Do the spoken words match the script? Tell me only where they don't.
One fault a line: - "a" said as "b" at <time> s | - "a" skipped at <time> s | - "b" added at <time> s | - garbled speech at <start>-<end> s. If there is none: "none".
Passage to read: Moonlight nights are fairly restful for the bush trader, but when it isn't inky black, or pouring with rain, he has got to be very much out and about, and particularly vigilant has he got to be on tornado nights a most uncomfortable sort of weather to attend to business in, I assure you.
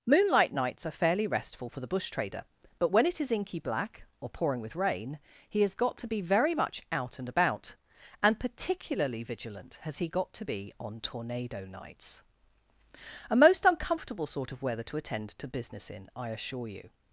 - "isn't" said as "is" at 3.2 s